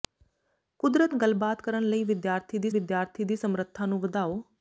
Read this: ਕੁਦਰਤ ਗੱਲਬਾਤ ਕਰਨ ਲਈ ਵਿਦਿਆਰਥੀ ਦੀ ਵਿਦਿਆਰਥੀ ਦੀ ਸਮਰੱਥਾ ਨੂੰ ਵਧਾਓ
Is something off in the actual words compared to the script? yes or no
no